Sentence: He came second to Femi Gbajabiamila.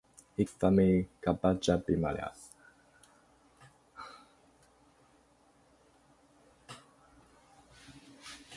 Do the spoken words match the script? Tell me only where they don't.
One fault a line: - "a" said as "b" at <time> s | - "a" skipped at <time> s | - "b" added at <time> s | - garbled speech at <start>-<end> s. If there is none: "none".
- "came second to" skipped at 0.5 s